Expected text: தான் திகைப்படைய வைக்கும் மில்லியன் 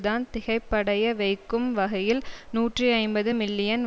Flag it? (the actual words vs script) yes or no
yes